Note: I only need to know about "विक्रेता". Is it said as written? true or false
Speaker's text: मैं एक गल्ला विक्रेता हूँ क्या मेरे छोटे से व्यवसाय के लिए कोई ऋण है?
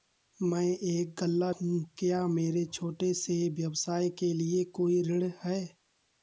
false